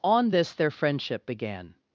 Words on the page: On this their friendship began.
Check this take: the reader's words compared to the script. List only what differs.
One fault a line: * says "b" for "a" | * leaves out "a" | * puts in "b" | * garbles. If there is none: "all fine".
all fine